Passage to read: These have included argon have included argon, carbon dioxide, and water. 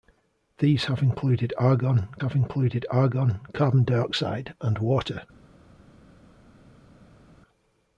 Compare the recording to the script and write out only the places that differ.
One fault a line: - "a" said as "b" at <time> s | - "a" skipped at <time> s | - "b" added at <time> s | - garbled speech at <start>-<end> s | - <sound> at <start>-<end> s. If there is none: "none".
none